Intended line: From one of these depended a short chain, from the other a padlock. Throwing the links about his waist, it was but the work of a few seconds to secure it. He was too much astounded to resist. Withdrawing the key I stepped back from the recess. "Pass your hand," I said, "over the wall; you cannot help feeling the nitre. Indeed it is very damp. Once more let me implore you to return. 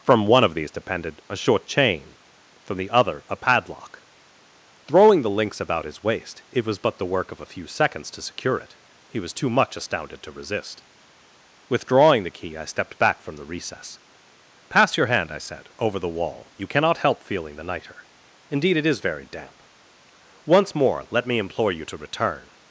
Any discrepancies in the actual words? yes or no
no